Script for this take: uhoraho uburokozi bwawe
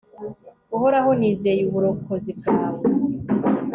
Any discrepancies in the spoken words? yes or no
yes